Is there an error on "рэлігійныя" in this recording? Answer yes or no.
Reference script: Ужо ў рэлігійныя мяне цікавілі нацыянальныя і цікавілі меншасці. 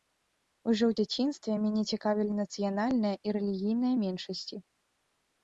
yes